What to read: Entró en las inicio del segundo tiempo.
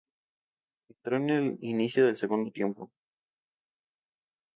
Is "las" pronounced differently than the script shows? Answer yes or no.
yes